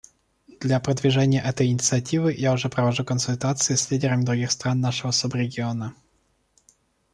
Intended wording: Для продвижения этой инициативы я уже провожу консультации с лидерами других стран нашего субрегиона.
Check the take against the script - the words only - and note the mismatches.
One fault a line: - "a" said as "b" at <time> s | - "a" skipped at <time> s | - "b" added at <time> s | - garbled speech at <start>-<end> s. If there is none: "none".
none